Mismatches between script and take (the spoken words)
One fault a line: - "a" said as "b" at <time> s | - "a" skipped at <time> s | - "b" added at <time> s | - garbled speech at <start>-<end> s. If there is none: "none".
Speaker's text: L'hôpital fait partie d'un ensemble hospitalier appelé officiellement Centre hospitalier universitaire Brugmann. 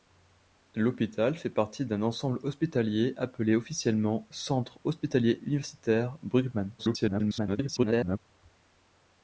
- garbled speech at 6.8-8.2 s